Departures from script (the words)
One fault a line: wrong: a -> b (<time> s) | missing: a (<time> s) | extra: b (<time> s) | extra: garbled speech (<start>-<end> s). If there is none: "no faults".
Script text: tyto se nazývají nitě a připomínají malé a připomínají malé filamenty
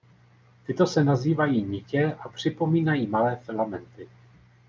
missing: a připomínají malé (3.4 s)